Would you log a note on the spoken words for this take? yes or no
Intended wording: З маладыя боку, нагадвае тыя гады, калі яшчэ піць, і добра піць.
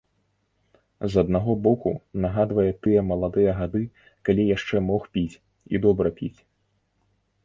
yes